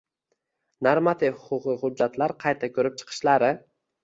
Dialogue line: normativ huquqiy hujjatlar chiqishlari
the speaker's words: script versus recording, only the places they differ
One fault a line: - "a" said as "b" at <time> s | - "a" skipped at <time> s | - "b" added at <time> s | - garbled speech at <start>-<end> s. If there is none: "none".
- "qayta ko‘rib" added at 2.5 s